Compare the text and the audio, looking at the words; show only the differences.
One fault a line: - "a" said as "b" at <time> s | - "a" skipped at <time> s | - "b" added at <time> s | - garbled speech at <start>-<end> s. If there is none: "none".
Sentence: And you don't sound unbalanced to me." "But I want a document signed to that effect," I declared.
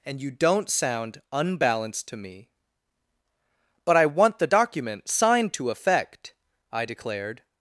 - "a" said as "the" at 4.4 s
- "that" skipped at 5.7 s